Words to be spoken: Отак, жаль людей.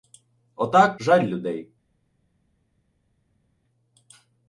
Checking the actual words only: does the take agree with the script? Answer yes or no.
yes